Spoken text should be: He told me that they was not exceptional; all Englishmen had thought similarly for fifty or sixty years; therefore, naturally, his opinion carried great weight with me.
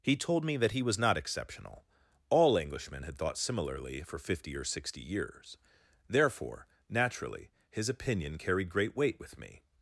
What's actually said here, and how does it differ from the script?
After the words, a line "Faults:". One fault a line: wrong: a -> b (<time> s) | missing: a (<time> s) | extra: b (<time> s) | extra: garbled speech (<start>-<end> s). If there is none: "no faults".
He told me that he was not exceptional; all Englishmen had thought similarly for fifty or sixty years; therefore, naturally, his opinion carried great weight with me.
Faults:
wrong: they -> he (0.7 s)